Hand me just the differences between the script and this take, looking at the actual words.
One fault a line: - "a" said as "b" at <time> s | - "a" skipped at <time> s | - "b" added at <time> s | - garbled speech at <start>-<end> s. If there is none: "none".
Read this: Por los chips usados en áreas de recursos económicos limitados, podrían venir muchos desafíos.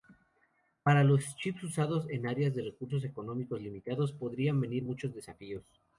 - "Por" said as "Para" at 0.8 s